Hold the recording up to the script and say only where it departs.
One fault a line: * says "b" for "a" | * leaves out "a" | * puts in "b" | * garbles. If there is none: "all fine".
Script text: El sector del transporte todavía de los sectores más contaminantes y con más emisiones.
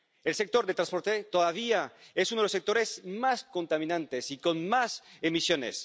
* puts in "es uno"